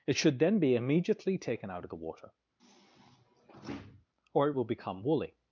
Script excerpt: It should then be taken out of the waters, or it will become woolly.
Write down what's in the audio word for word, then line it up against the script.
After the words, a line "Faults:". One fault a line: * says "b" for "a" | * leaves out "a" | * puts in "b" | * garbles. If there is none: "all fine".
It should then be immediately taken out of the water, or it will become woolly.
Faults:
* puts in "immediately"
* says "water" for "waters"